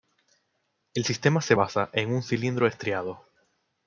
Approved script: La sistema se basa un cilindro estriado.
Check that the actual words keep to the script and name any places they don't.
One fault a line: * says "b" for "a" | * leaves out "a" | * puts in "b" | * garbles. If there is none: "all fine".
* says "El" for "La"
* puts in "en"